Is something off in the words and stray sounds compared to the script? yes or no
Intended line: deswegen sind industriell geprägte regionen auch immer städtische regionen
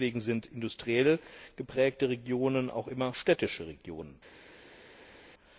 no